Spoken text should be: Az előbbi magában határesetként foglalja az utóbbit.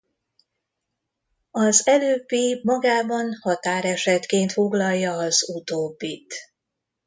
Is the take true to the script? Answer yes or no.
yes